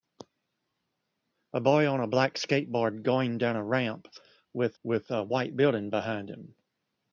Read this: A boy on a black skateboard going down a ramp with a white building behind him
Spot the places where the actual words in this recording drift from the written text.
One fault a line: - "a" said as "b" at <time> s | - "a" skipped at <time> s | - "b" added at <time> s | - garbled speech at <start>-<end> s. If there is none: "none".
- "with" added at 4.8 s